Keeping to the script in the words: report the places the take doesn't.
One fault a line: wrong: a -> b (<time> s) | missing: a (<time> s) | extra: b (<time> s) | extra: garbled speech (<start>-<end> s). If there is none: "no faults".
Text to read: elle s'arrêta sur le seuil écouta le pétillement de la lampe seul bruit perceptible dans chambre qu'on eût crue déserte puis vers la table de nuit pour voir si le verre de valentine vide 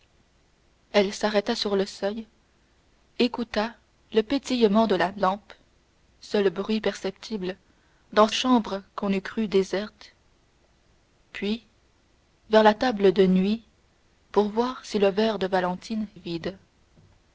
no faults